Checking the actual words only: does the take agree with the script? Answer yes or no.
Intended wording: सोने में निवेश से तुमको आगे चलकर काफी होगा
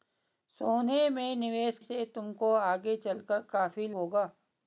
yes